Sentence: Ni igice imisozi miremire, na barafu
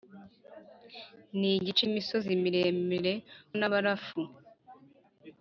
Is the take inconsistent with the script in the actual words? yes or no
no